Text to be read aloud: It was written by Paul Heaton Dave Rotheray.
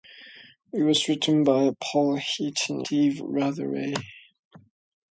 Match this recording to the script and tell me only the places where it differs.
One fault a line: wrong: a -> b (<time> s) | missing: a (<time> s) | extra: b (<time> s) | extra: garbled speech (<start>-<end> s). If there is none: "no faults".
no faults